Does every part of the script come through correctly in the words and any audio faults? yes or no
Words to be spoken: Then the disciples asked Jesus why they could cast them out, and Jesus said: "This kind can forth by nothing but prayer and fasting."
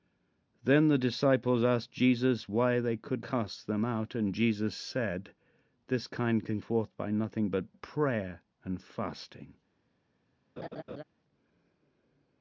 no